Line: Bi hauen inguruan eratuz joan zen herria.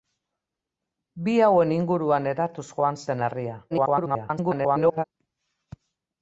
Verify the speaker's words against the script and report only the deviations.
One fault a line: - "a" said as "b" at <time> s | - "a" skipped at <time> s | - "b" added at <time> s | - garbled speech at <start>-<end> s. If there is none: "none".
- garbled speech at 3.7-5.0 s